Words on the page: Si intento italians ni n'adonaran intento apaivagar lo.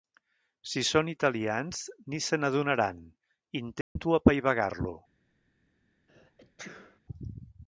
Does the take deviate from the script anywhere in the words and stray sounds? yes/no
yes